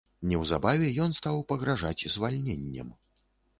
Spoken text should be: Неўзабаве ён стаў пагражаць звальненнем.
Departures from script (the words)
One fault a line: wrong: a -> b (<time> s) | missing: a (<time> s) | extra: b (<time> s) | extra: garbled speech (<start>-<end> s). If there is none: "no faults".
no faults